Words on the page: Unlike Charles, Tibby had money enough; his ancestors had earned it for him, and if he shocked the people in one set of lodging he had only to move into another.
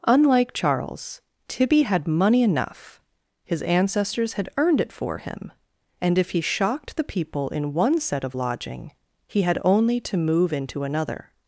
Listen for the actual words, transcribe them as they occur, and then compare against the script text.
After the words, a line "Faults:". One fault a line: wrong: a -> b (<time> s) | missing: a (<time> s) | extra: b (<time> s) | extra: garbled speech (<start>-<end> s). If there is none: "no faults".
Unlike Charles, Tibby had money enough; his ancestors had earned it for him, and if he shocked the people in one set of lodging he had only to move into another.
Faults:
no faults